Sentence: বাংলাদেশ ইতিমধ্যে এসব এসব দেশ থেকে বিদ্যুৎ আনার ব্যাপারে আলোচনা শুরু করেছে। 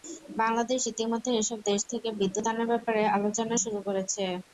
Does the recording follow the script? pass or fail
fail